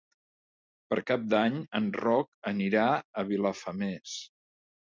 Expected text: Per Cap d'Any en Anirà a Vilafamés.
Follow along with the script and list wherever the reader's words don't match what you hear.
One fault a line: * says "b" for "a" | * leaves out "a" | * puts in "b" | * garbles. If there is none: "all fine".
* puts in "Roc"